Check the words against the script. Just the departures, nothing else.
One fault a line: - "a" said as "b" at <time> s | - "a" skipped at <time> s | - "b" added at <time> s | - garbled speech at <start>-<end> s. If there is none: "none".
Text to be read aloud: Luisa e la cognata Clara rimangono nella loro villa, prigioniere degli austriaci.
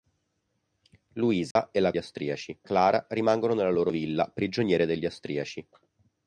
- "cognata" said as "austriaci" at 2.0 s